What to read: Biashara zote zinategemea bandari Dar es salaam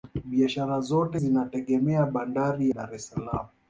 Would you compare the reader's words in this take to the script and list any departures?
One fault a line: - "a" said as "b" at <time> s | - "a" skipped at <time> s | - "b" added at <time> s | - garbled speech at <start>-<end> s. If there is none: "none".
none